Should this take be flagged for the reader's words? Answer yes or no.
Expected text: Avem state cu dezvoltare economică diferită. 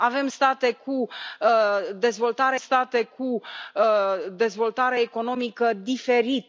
yes